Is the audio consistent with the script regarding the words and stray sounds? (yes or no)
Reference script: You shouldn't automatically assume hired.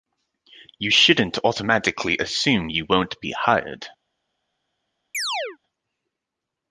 no